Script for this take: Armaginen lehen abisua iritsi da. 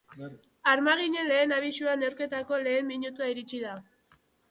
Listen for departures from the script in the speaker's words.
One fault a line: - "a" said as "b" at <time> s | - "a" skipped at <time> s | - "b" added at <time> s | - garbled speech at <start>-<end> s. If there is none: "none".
- "neurketako lehen minutua" added at 2.1 s